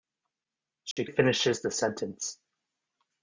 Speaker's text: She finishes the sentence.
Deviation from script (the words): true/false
false